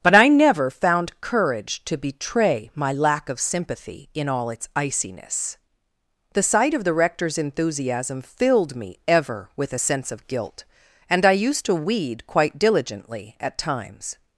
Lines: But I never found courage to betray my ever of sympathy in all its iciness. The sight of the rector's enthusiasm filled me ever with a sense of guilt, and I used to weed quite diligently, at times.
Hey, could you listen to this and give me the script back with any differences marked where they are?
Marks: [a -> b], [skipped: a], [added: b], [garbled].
But I never found courage to betray my [ever -> lack] of sympathy in all its iciness. The sight of the rector's enthusiasm filled me ever with a sense of guilt, and I used to weed quite diligently, at times.